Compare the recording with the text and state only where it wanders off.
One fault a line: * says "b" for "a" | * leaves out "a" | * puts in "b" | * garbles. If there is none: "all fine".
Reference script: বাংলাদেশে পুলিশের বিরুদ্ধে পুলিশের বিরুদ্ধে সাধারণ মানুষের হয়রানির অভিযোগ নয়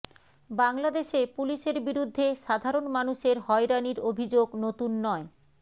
* leaves out "পুলিশের বিরুদ্ধে"
* puts in "নতুন"